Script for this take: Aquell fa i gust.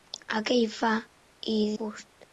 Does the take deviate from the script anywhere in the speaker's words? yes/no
no